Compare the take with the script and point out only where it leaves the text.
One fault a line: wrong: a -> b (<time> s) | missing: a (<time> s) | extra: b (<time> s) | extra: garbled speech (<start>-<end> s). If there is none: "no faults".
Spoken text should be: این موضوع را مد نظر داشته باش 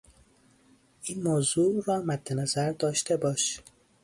no faults